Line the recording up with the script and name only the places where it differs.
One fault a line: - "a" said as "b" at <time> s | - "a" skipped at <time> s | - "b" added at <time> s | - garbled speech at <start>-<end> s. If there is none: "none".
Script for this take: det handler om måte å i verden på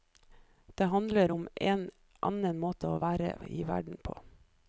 - "en annen" added at 1.5 s
- "være" added at 3.0 s